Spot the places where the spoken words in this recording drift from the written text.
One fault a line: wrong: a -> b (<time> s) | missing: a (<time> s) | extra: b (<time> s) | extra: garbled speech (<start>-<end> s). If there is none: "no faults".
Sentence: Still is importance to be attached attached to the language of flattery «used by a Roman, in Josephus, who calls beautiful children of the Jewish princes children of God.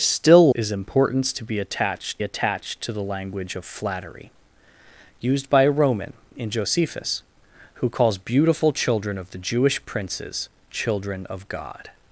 no faults